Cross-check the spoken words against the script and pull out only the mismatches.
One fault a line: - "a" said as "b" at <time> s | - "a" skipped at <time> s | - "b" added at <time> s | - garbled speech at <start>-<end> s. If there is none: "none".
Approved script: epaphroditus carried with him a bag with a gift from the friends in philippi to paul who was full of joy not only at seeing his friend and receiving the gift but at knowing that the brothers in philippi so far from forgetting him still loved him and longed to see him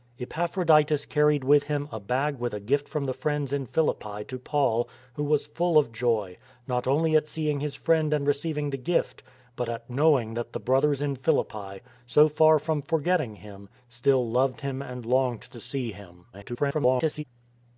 - garbled speech at 16.3-17.2 s